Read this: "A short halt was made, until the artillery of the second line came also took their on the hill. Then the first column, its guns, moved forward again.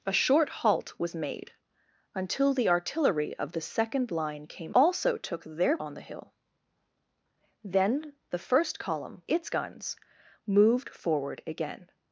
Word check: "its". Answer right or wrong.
right